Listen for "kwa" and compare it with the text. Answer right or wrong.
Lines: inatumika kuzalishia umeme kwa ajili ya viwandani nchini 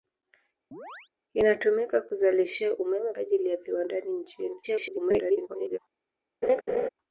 wrong